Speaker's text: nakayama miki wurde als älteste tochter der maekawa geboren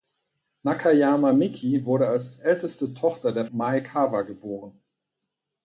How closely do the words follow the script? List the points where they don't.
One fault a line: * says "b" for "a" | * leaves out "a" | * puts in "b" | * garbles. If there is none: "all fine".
all fine